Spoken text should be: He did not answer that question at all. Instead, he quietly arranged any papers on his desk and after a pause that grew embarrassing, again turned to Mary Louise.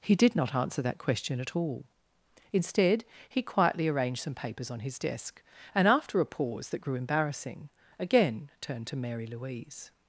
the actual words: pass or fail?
fail